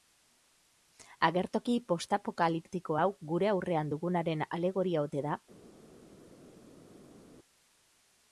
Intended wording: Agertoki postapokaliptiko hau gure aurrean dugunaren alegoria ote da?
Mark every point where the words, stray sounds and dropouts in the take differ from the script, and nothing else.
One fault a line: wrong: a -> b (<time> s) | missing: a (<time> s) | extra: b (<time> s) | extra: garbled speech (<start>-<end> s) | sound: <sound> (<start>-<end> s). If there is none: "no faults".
no faults